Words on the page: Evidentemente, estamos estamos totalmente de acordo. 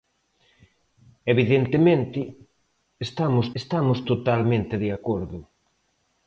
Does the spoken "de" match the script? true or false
true